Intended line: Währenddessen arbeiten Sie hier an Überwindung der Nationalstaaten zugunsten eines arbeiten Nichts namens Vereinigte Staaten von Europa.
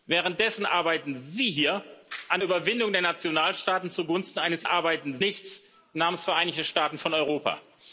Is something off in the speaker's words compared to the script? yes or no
no